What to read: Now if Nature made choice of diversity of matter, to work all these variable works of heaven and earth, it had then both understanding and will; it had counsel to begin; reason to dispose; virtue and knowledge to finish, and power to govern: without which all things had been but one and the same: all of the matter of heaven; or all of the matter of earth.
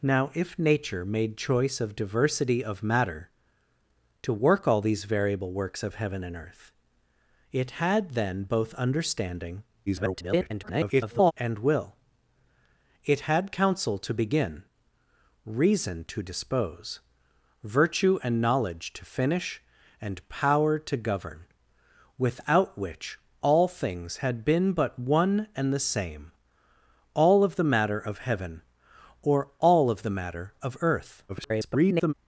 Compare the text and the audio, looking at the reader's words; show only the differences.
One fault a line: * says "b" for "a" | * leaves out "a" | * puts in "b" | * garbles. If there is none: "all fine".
* garbles
* garbles